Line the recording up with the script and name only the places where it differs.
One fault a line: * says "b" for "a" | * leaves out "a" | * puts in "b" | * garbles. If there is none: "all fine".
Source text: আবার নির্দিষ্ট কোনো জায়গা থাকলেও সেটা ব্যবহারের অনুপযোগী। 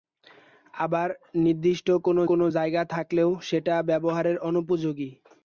* puts in "কোনো"